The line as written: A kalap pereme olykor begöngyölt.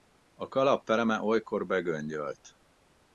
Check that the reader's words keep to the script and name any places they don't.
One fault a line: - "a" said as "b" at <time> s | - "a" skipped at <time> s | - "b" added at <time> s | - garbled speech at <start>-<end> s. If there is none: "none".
none